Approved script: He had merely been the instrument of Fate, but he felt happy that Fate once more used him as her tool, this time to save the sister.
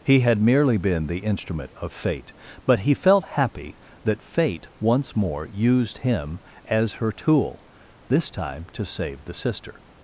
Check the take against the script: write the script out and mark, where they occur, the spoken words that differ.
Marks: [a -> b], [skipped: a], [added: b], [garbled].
He had merely been the instrument of Fate, but he felt happy that Fate once more used him as her tool, this time to save the sister.